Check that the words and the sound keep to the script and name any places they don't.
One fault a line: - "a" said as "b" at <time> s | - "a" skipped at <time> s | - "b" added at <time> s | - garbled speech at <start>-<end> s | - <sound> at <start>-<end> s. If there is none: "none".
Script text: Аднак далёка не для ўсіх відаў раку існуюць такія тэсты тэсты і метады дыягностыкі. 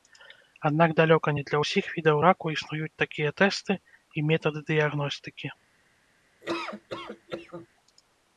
- "тэсты" skipped at 3.8 s
- laugh at 6.4-7.7 s